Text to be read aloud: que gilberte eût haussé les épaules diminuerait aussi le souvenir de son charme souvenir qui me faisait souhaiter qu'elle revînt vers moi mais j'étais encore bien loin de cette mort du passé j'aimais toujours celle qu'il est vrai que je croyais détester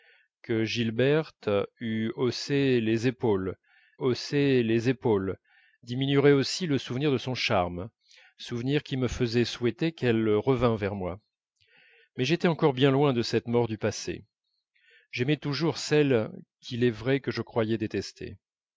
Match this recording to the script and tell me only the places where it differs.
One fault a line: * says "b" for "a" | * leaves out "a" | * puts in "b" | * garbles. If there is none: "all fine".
* puts in "haussé les épaules"